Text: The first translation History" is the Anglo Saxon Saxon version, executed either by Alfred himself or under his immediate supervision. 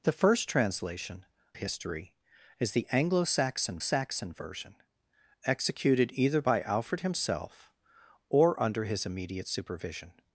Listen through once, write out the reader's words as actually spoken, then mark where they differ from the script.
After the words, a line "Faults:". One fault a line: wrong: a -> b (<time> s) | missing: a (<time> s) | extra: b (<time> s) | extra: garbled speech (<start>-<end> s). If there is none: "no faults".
The first translation History" is the Anglo Saxon Saxon version, executed either by Alfred himself or under his immediate supervision.
Faults:
no faults